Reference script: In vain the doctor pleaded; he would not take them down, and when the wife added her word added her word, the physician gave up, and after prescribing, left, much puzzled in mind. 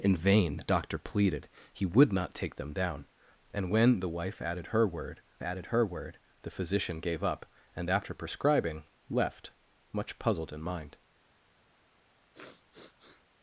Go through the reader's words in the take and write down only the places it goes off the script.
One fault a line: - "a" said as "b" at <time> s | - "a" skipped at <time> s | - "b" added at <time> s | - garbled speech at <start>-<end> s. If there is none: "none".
none